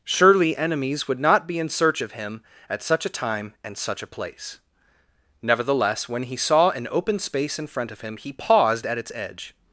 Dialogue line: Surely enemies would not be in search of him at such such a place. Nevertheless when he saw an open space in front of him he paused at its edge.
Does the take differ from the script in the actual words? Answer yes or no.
yes